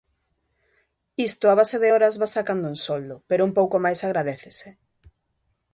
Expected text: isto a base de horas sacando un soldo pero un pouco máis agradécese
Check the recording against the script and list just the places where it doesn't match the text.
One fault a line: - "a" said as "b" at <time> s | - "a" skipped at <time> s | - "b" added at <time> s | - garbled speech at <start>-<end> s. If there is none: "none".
- "vas" added at 2.2 s